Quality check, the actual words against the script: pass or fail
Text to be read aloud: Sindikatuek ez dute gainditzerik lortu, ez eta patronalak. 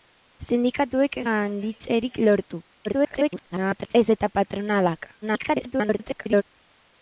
fail